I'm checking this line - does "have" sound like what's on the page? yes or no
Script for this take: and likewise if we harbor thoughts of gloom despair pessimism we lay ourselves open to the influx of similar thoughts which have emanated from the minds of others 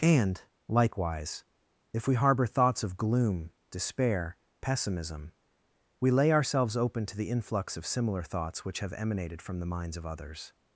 yes